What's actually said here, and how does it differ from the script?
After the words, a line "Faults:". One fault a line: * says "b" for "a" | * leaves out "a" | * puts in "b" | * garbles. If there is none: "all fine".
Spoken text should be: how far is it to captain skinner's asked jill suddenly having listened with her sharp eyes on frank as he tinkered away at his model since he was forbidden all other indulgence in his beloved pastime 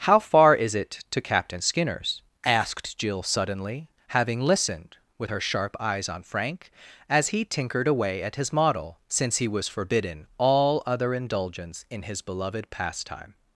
how far is it to captain skinner's asked jill suddenly having listened with her sharp eyes on frank as he tinkered away at his model since he was forbidden all other indulgence in his beloved pastime
Faults:
all fine